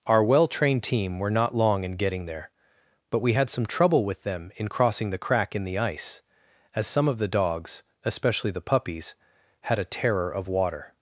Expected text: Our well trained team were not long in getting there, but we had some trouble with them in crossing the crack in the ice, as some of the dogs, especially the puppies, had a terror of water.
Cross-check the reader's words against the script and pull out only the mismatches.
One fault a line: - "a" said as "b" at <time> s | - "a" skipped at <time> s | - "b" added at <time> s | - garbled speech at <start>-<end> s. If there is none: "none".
none